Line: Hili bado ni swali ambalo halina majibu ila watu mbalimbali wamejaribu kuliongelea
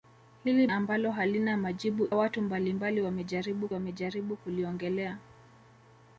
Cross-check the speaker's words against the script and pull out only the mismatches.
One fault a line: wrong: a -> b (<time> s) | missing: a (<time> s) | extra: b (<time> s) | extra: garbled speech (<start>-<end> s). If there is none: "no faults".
missing: bado ni swali (0.7 s)
missing: ila (2.1 s)
extra: wamejaribu (3.7 s)